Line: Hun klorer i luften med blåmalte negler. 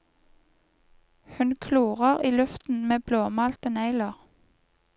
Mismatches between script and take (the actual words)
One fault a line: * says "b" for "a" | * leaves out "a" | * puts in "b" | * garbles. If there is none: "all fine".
all fine